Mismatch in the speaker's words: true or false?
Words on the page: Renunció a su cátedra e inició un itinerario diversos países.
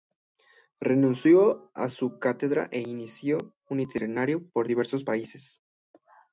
true